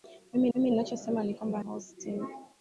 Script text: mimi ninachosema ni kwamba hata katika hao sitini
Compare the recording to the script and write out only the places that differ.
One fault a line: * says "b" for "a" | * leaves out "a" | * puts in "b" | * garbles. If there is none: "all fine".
* puts in "mimi"
* leaves out "hata katika"